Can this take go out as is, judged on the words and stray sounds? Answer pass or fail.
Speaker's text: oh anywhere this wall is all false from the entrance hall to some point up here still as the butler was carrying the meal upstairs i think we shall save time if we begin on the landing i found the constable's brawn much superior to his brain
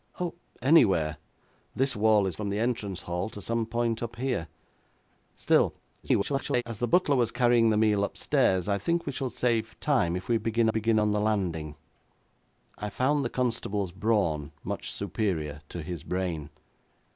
fail